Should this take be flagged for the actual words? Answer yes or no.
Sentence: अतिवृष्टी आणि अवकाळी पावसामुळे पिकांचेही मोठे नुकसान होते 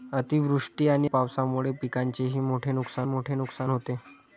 yes